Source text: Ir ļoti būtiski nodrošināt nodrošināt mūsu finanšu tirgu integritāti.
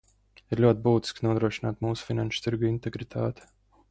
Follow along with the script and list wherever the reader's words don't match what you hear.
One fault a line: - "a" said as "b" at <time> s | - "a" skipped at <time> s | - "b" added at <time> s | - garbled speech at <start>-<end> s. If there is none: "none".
- "nodrošināt" skipped at 1.9 s